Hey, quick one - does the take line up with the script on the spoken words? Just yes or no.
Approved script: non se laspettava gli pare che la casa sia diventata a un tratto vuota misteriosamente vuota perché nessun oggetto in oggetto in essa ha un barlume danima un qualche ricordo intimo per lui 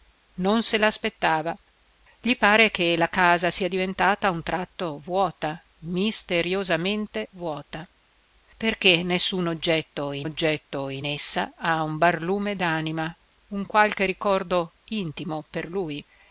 yes